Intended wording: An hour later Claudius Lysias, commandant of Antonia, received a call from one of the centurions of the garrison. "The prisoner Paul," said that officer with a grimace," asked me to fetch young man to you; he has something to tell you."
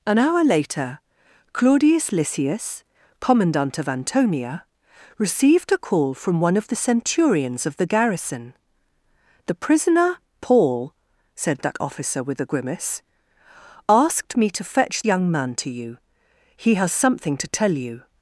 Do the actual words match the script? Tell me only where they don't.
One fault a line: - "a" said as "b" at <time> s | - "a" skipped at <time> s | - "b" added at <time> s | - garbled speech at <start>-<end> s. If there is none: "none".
none